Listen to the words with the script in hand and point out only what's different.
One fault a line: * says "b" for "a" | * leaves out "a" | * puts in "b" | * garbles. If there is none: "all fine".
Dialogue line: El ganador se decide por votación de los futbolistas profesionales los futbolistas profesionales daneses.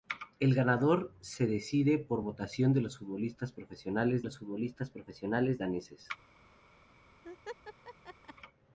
all fine